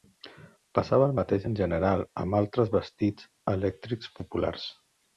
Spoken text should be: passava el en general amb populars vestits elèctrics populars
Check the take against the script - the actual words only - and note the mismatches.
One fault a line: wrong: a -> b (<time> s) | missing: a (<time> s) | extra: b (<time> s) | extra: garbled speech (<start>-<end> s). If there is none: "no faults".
extra: mateix (1.2 s)
wrong: populars -> altres (2.4 s)